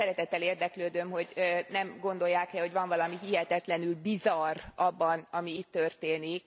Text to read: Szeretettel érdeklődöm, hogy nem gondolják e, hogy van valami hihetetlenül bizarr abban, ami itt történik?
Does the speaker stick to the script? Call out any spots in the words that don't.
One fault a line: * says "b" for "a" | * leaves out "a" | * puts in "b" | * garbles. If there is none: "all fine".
all fine